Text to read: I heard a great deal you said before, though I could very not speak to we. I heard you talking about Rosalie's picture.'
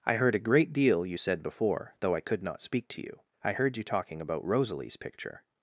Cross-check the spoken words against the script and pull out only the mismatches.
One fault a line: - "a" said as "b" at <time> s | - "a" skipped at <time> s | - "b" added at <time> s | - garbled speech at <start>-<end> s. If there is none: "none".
- "very" skipped at 2.4 s
- "we" said as "you" at 3.0 s